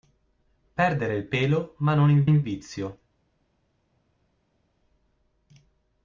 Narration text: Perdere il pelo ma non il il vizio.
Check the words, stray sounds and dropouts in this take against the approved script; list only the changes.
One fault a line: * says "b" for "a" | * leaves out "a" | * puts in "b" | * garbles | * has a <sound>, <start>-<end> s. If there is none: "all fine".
all fine